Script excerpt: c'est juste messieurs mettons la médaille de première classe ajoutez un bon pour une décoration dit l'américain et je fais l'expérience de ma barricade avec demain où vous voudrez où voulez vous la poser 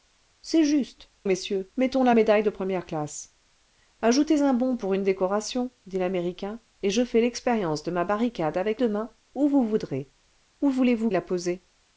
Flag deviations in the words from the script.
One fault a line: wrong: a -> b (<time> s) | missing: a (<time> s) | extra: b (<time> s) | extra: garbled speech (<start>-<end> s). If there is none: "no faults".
no faults